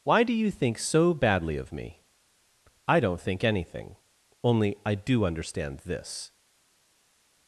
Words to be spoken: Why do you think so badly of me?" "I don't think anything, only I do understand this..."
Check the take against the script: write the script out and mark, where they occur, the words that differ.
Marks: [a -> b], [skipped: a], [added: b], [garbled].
Why do you think so badly of me?" "I don't think anything, only I do understand this..."